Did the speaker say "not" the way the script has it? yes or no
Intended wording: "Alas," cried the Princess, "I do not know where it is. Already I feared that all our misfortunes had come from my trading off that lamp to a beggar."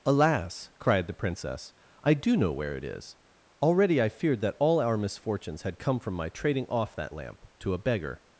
no